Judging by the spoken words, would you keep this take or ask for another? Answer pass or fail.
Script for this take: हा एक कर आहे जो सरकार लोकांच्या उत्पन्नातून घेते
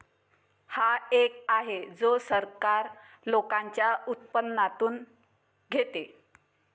fail